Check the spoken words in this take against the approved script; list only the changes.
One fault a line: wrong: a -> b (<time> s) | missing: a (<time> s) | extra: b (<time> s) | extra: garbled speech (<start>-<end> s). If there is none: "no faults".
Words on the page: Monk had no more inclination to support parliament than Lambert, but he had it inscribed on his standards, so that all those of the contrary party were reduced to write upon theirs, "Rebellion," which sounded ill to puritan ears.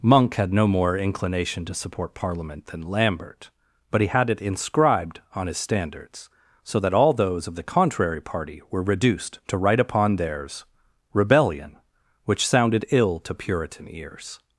no faults